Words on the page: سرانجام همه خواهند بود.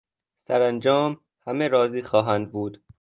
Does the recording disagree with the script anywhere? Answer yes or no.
yes